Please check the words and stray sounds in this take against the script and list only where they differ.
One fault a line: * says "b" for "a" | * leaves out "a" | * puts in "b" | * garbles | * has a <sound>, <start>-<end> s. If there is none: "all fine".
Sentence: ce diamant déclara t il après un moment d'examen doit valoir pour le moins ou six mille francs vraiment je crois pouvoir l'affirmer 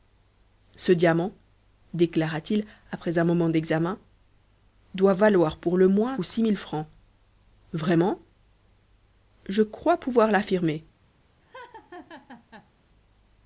* has a laugh, 11.4-12.7 s